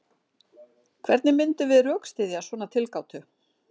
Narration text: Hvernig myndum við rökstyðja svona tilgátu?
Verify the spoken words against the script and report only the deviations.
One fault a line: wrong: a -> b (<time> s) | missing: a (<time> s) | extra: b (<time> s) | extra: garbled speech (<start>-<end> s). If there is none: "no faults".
no faults